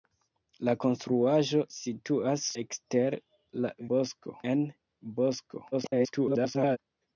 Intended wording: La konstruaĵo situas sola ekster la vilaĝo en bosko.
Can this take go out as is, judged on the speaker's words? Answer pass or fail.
fail